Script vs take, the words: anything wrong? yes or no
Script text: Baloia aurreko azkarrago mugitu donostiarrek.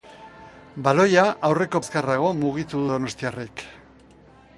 no